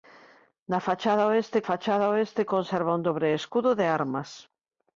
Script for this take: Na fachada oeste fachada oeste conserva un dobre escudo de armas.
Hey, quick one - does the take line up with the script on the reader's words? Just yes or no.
yes